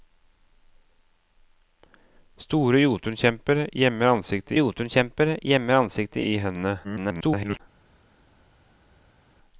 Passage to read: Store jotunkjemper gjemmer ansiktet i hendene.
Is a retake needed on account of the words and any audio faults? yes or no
yes